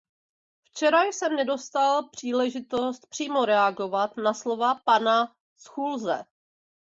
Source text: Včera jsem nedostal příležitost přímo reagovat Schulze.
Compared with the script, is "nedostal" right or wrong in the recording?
right